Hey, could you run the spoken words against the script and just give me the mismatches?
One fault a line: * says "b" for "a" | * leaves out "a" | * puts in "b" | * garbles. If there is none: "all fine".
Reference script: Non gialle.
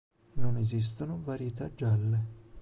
* puts in "esistono varietà"